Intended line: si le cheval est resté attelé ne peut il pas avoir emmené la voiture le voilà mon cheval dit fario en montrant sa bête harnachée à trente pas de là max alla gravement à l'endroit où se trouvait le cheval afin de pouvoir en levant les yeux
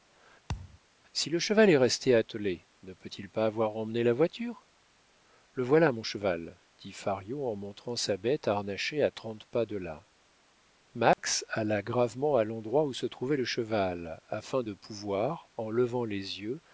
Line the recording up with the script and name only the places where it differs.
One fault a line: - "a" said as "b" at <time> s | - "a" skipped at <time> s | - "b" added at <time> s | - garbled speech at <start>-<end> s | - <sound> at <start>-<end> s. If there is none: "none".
- thud at 0.5-0.8 s
- dropout at 11.1-11.2 s